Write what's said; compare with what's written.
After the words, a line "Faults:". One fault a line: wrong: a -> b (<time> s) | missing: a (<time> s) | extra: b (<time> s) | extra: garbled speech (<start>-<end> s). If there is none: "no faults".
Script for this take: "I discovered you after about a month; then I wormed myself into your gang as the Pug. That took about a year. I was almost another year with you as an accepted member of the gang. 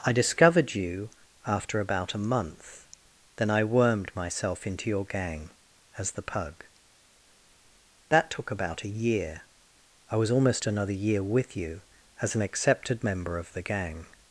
"I discovered you after about a month; then I wormed myself into your gang as the Pug. That took about a year. I was almost another year with you as an accepted member of the gang.
Faults:
no faults